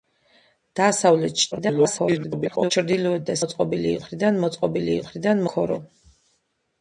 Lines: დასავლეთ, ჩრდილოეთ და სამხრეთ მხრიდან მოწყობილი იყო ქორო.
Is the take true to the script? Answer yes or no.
no